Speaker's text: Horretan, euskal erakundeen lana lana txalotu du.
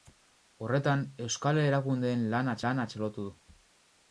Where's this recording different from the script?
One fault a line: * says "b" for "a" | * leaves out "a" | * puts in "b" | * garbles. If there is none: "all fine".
all fine